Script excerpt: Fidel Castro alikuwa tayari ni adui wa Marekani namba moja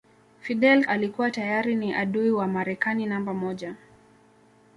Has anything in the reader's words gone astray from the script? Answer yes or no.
yes